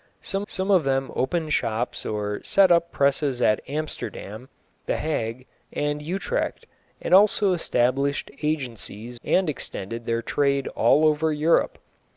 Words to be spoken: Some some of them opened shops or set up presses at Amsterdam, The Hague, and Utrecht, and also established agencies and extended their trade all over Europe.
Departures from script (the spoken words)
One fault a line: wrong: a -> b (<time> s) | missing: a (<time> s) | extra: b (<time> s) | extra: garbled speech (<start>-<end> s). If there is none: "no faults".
no faults